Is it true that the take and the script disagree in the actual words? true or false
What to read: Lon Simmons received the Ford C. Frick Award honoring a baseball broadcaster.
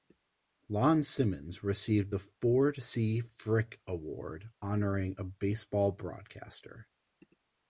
false